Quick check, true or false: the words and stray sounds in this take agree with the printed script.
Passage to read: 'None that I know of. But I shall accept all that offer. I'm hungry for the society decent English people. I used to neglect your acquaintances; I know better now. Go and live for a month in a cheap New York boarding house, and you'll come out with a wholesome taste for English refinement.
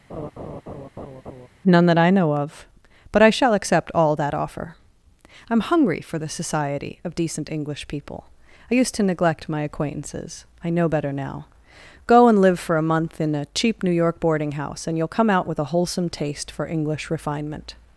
false